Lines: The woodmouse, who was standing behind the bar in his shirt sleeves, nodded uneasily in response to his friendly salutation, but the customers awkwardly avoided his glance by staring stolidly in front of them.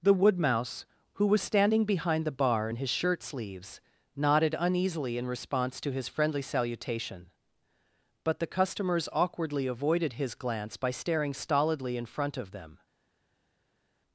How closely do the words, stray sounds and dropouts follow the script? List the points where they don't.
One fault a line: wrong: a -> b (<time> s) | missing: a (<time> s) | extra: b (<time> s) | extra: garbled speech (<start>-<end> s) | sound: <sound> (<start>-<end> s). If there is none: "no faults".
no faults